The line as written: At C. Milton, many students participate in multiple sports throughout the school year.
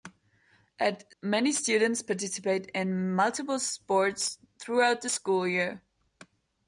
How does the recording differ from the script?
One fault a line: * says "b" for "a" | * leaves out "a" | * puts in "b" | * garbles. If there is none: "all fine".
* leaves out "C Milton"